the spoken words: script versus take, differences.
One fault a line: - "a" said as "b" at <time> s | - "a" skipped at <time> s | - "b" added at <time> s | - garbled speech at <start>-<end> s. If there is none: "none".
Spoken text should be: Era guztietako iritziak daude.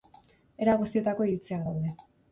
none